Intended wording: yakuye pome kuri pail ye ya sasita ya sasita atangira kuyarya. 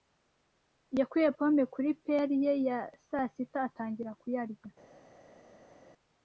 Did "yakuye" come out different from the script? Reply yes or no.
no